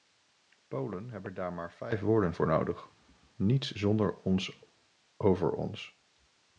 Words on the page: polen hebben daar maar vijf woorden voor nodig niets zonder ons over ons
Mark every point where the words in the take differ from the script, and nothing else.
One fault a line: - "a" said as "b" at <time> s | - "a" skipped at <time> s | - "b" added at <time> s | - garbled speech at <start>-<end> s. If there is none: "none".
none